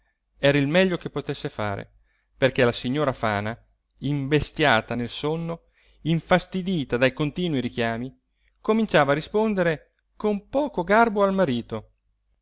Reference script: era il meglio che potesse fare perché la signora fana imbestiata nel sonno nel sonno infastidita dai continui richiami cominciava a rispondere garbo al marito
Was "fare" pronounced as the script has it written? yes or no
yes